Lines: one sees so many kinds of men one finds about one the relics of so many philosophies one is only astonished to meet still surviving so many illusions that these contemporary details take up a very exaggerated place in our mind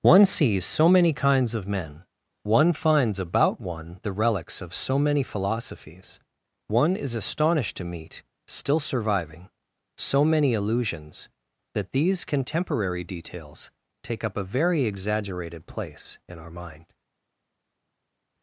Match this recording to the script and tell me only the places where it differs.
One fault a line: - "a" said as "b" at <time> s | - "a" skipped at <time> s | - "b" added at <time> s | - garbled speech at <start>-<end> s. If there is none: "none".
- "only" skipped at 7.1 s